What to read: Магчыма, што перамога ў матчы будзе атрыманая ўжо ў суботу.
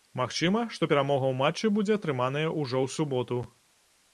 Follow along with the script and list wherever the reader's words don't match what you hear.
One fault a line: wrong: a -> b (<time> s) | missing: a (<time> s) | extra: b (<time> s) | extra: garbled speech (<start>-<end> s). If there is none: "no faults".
no faults